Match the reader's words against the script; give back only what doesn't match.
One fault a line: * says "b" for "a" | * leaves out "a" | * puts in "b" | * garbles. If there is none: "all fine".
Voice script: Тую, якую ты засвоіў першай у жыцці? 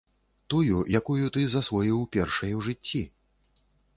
all fine